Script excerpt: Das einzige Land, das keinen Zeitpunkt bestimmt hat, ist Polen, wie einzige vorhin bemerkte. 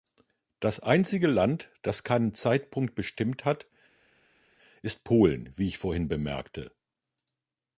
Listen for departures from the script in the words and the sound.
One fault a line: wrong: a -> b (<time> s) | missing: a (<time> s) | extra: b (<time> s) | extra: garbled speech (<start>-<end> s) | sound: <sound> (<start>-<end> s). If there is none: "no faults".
wrong: einzige -> ich (5.7 s)